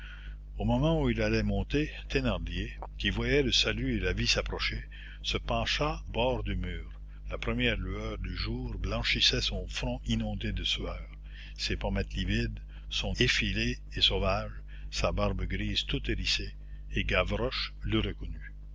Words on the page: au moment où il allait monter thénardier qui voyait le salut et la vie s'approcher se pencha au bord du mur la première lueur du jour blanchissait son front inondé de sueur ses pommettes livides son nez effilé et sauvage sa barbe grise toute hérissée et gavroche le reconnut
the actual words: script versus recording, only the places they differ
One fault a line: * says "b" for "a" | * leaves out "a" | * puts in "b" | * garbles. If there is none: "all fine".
* leaves out "au"
* leaves out "nez"